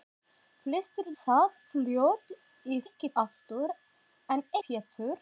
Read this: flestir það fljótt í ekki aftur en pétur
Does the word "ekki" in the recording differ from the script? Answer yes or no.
no